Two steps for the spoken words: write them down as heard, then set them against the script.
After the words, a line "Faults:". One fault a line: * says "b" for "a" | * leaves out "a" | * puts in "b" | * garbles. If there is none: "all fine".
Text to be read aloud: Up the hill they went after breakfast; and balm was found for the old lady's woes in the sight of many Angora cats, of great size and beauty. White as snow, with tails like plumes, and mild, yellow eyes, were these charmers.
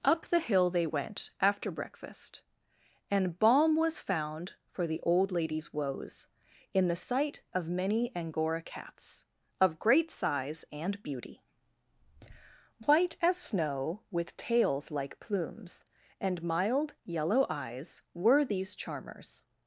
Up the hill they went after breakfast; and balm was found for the old lady's woes in the sight of many Angora cats, of great size and beauty. White as snow, with tails like plumes, and mild, yellow eyes, were these charmers.
Faults:
all fine